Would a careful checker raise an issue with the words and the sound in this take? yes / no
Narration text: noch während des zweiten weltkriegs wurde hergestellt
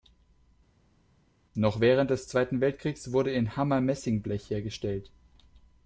yes